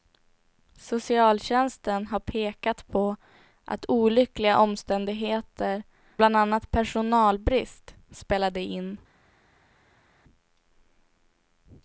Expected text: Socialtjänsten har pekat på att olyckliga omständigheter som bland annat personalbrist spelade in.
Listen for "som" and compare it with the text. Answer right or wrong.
wrong